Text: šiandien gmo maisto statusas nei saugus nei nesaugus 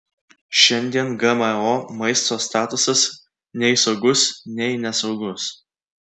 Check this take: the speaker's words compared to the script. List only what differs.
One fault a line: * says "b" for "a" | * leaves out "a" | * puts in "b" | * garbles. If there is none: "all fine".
all fine